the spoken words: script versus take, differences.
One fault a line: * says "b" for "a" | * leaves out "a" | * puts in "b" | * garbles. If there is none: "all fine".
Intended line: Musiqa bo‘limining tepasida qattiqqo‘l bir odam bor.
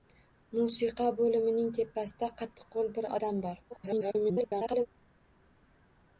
* garbles